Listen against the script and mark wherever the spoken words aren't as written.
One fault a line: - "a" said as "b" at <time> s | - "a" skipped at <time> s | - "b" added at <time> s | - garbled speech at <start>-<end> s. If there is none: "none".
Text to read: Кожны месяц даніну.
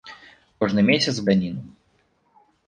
none